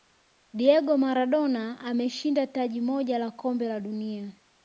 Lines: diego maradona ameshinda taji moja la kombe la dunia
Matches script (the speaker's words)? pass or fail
pass